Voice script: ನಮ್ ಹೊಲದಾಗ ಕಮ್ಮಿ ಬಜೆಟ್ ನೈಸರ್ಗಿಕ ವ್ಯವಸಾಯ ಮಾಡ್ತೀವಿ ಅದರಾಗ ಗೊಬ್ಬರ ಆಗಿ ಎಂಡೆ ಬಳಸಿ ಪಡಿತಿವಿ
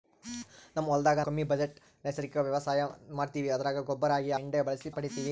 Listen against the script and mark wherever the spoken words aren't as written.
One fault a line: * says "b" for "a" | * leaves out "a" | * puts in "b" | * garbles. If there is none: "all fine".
all fine